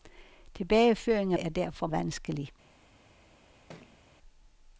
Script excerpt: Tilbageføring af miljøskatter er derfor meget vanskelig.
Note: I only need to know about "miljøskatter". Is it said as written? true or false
false